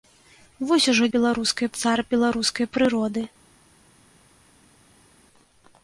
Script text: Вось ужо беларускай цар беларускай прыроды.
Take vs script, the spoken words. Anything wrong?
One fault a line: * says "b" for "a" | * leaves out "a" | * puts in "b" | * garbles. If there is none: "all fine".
all fine